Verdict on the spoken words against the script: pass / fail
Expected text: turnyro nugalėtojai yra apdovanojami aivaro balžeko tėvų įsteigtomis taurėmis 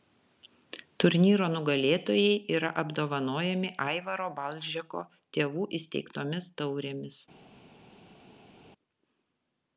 pass